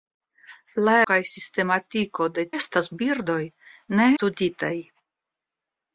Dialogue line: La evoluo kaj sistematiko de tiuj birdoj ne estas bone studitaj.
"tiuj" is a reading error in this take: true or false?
true